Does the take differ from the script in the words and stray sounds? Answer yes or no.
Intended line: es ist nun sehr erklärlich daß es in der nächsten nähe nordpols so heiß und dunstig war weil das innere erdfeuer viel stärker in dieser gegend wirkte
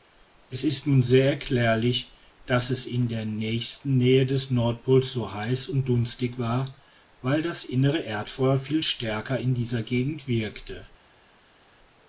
yes